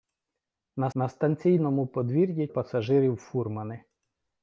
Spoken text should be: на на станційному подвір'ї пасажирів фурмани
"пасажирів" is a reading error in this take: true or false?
false